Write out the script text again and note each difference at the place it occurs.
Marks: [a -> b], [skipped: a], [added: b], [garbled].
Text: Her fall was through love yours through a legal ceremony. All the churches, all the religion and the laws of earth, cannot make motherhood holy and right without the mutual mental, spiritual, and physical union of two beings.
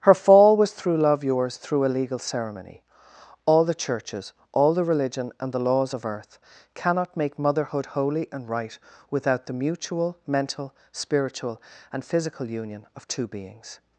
Her fall was through love yours through a legal ceremony. All the churches, all the religion and the laws of earth, cannot make motherhood holy and right without the mutual mental, spiritual, and physical union of two beings.